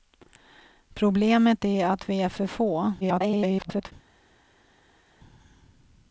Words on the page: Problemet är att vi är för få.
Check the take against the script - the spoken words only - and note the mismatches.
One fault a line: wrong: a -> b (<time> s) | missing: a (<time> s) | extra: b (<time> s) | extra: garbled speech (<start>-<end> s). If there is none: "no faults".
extra: garbled speech (3.0-3.9 s)